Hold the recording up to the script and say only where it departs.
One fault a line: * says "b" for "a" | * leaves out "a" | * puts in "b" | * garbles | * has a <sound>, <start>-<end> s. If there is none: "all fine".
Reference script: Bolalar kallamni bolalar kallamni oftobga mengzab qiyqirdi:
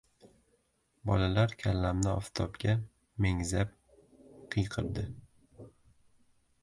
* leaves out "bolalar kallamni"